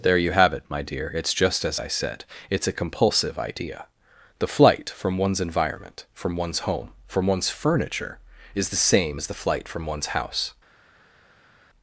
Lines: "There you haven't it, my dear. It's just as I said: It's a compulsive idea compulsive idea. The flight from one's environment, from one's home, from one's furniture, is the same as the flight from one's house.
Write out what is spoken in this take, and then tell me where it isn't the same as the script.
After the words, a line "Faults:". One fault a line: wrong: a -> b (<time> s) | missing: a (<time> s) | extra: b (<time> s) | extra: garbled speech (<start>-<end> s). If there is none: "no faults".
"There you have it, my dear. It's just as I said: It's a compulsive idea. The flight from one's environment, from one's home, from one's furniture, is the same as the flight from one's house.
Faults:
wrong: haven't -> have (0.3 s)
missing: compulsive idea (3.9 s)